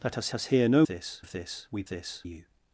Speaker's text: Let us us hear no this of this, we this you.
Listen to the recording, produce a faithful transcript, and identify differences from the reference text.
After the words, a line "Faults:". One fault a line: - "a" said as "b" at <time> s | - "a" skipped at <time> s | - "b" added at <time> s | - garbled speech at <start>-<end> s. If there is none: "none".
Let us us hear no this of this, we this you.
Faults:
none